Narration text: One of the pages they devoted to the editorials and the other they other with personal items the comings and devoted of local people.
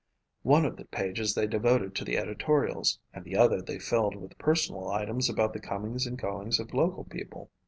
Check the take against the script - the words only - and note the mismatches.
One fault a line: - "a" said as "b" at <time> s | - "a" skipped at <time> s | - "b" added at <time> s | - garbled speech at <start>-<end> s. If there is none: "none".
- "other" said as "filled" at 3.8 s
- "about" added at 5.3 s
- "devoted" said as "goings" at 6.2 s